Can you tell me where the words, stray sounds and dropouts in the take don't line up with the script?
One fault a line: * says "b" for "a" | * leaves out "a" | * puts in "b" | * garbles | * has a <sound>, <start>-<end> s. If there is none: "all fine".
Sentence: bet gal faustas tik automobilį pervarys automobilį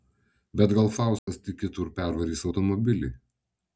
* has a dropout, 1.2-1.3 s
* says "kitur" for "automobilį"